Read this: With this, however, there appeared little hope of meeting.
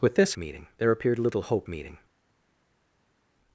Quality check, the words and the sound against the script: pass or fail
fail